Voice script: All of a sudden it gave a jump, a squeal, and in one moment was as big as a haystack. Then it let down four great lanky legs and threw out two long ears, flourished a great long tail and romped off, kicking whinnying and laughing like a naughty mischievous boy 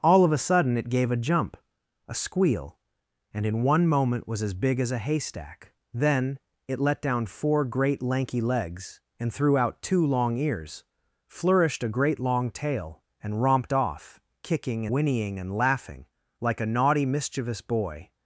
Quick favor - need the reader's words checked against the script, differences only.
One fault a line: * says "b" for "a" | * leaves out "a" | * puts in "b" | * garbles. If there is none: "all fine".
all fine